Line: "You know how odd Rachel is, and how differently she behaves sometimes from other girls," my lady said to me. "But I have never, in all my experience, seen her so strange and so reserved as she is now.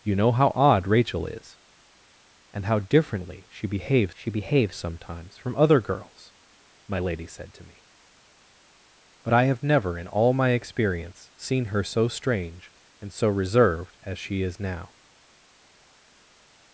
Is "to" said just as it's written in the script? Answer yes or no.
yes